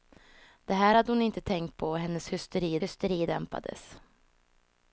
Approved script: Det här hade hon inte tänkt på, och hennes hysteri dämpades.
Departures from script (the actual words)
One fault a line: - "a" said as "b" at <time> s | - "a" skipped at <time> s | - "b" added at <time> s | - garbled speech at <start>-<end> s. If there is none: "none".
- "hysteri" added at 2.8 s